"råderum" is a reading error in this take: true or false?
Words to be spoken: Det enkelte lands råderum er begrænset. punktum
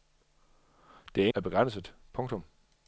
true